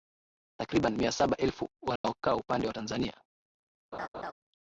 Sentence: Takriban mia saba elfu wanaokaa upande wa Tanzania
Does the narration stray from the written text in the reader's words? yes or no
no